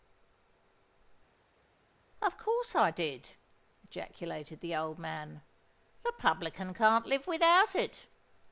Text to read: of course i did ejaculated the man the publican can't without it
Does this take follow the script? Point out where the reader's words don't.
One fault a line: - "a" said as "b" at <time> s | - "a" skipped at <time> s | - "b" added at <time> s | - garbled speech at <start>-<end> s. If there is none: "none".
- "old" added at 4.8 s
- "live" added at 7.1 s